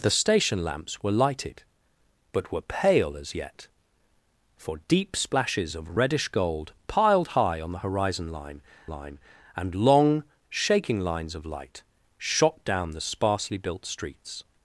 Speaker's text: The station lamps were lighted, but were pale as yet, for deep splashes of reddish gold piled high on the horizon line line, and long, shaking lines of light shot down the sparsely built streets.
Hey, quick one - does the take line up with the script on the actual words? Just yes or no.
yes